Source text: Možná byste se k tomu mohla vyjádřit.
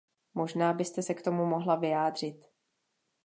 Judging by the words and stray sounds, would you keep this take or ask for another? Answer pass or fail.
pass